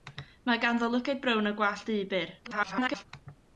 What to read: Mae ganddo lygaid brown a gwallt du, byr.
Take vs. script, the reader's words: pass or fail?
fail